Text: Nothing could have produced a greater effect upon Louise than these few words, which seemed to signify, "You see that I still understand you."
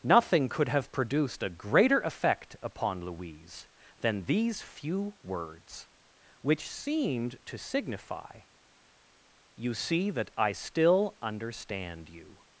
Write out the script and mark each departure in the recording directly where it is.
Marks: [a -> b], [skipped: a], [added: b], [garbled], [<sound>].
Nothing could have produced a greater effect upon Louise than these few words, which seemed to signify, "You see that I still understand you."